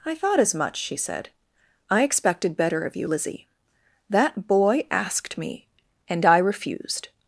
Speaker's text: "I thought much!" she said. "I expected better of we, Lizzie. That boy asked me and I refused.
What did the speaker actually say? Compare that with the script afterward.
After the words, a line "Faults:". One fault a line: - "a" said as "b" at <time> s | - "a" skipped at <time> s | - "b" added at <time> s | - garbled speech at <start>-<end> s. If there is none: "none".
"I thought as much!" she said. "I expected better of you, Lizzie. That boy asked me and I refused.
Faults:
- "as" added at 0.4 s
- "we" said as "you" at 3.0 s